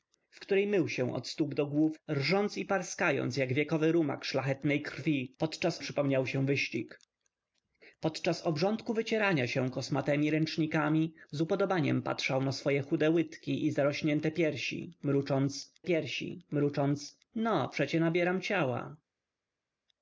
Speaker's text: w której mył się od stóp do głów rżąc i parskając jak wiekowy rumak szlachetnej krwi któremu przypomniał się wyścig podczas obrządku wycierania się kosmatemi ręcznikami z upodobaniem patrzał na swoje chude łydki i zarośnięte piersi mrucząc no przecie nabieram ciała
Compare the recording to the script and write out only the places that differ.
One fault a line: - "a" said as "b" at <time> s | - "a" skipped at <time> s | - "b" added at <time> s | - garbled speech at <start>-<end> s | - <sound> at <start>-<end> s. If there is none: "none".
- "któremu" said as "podczas" at 5.4 s
- "piersi mrucząc" added at 15.8 s